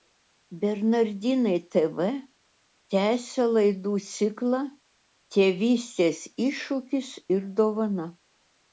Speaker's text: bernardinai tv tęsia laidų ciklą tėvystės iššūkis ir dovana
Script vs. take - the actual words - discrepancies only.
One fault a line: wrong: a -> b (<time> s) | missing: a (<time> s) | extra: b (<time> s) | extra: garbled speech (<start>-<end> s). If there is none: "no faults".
no faults